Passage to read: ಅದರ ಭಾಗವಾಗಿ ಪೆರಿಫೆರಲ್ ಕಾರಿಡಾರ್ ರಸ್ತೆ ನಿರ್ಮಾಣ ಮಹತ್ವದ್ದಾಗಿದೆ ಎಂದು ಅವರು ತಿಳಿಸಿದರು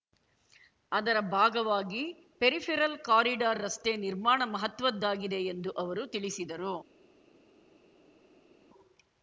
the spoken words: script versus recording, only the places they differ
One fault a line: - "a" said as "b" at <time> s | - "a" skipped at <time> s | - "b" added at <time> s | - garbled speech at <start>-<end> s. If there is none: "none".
none